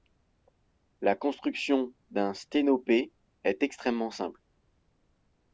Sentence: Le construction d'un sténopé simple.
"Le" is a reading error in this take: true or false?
true